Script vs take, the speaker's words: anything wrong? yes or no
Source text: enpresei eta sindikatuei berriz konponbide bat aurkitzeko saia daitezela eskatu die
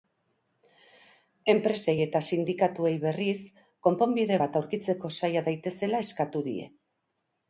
no